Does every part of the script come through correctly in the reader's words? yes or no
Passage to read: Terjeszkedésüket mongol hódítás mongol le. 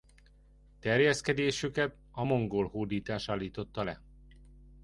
no